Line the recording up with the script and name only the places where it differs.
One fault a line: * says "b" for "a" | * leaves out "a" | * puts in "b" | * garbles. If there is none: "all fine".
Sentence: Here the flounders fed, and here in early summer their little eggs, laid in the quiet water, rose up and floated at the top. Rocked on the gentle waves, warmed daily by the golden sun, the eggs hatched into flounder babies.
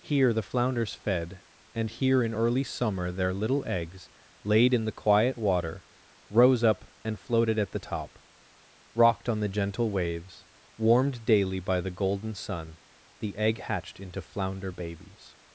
* says "egg" for "eggs"